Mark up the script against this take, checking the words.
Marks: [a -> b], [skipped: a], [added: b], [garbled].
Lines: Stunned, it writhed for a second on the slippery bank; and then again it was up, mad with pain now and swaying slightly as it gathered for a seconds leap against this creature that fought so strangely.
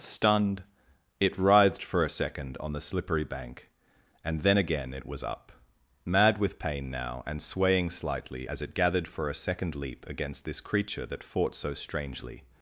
Stunned, it writhed for a second on the slippery bank; and then again it was up, mad with pain now and swaying slightly as it gathered for a [seconds -> second] leap against this creature that fought so strangely.